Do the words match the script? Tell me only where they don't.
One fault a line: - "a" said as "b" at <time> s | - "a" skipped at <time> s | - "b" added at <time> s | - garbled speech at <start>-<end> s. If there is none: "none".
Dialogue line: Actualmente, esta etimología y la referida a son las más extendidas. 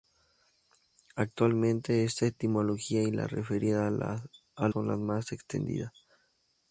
none